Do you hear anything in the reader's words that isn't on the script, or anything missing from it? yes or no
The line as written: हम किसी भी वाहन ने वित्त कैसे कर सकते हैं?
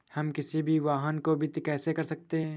yes